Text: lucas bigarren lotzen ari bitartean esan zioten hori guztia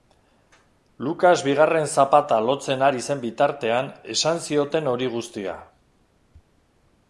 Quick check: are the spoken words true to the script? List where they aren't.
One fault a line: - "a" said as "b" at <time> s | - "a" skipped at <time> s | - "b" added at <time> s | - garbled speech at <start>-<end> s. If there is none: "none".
- "zapata" added at 2.0 s
- "zen" added at 3.1 s